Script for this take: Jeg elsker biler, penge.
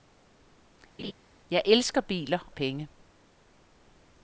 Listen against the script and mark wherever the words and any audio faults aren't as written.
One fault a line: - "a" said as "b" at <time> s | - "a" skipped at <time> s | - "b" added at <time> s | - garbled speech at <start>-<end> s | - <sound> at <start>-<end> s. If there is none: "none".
- laugh at 1.0-1.1 s